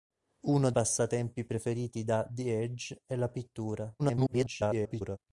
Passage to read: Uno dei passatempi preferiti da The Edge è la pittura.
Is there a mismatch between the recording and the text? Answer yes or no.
yes